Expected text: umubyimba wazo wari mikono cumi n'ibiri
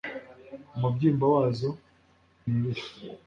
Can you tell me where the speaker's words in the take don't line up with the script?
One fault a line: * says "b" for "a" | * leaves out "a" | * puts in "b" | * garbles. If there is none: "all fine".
* leaves out "wari mikono cumi"